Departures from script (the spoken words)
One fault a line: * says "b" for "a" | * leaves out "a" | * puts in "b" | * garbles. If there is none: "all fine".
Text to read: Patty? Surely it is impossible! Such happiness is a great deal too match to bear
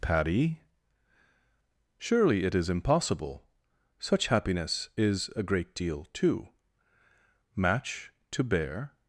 all fine